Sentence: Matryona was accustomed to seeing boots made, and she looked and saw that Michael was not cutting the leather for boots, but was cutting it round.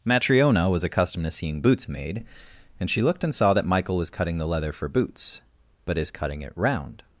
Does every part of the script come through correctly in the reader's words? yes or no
no